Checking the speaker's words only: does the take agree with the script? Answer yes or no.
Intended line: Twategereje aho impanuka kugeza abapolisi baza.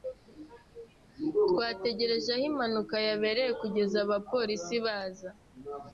no